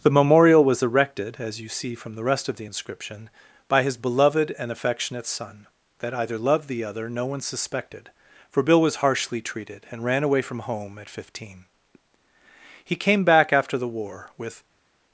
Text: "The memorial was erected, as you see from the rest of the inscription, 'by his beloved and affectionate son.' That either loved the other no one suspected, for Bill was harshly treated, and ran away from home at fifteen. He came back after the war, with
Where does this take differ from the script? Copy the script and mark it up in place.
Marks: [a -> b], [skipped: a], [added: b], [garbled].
"The memorial was erected, as you see from the rest of the inscription, 'by his beloved and affectionate son.' That either loved the other no one suspected, for Bill was harshly treated, and ran away from home at fifteen. He came back after the war, with